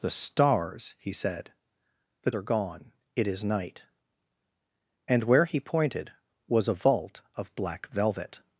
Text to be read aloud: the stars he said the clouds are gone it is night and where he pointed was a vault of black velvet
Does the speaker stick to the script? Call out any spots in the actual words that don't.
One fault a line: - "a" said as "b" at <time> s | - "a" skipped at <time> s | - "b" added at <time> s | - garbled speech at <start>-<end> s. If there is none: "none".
- "clouds" skipped at 2.3 s